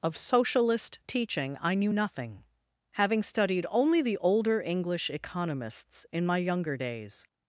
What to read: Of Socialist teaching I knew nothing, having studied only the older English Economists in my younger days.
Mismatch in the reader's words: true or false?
false